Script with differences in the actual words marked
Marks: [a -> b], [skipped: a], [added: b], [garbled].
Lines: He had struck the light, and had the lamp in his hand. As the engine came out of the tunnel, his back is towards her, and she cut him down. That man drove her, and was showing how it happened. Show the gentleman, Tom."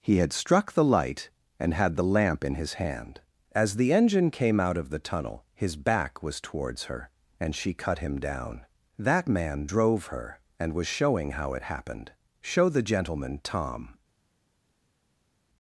He had struck the light, and had the lamp in his hand. As the engine came out of the tunnel, his back [is -> was] towards her, and she cut him down. That man drove her, and was showing how it happened. Show the gentleman, Tom."